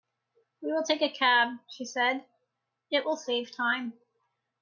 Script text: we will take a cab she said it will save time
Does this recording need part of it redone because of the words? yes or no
no